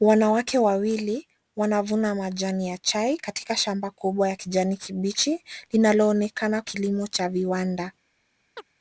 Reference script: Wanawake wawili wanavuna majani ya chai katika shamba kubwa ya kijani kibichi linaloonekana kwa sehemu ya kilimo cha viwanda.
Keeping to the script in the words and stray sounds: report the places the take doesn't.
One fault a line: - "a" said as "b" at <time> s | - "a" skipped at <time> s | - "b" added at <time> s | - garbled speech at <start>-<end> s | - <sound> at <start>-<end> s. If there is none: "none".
- "kwa sehemu ya" skipped at 6.6 s
- chirp at 8.6-8.7 s